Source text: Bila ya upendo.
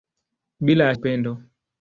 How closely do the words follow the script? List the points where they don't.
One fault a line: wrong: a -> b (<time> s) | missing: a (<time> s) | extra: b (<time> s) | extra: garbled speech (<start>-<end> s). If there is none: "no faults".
no faults